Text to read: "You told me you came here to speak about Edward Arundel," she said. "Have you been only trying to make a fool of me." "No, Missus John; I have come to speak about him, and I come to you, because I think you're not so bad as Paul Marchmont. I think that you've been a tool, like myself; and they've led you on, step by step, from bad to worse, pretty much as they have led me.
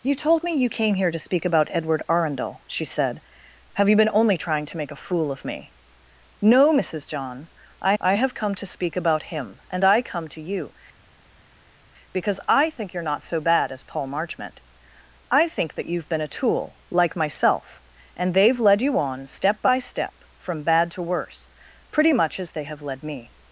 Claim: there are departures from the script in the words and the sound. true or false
true